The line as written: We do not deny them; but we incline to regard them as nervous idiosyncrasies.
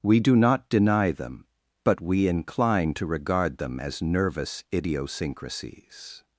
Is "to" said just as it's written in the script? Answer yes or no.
yes